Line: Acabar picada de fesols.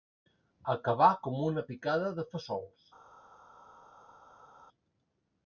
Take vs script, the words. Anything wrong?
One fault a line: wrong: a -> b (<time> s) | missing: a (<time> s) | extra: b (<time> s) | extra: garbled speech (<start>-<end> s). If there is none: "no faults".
extra: com una (1.3 s)